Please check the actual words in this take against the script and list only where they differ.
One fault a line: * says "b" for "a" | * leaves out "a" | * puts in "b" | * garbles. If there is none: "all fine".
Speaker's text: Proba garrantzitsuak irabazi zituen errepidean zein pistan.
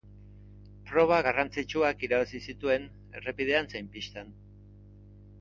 all fine